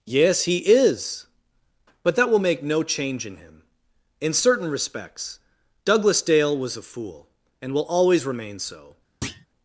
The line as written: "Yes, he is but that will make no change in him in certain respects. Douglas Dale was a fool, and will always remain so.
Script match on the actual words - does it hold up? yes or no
yes